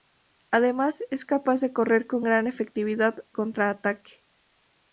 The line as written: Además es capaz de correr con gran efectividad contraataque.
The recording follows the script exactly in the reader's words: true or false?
true